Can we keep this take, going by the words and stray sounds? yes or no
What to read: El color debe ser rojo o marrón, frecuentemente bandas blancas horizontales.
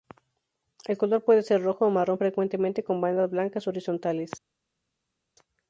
no